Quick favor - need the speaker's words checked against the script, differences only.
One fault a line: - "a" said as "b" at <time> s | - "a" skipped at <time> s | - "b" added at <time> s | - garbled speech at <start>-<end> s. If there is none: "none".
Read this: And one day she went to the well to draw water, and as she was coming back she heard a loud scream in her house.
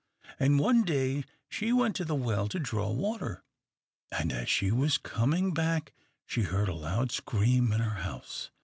none